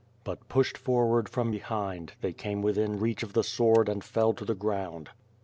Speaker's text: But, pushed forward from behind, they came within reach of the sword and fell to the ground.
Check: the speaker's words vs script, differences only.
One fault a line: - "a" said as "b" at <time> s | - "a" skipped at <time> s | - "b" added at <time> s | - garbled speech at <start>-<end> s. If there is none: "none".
none